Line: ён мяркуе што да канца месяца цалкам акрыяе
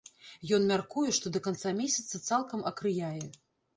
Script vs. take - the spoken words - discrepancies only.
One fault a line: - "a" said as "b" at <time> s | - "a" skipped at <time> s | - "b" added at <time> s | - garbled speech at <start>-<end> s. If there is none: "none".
none